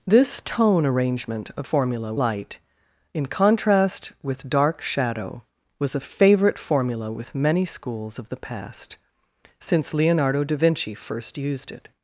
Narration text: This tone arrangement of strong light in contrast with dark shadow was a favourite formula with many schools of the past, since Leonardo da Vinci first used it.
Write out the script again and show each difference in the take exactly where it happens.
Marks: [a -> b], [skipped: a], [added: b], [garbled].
This tone arrangement of [strong -> formula] light in contrast with dark shadow was a favourite formula with many schools of the past, since Leonardo da Vinci first used it.